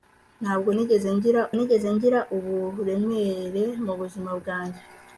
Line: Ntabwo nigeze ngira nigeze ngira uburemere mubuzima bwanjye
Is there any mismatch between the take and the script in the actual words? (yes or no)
no